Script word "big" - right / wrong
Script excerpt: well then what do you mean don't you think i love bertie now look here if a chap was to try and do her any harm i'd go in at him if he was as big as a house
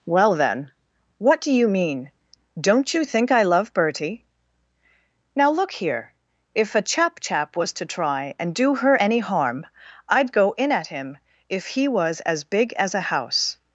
right